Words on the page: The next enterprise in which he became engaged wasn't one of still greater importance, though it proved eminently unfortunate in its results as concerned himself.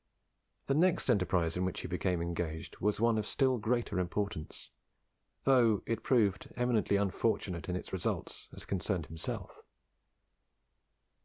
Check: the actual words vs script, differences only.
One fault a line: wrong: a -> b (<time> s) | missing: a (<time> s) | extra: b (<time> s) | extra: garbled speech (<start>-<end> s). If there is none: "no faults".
wrong: wasn't -> was (2.8 s)